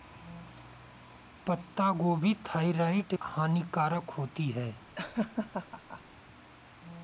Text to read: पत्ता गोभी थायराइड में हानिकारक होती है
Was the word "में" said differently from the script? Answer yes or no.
yes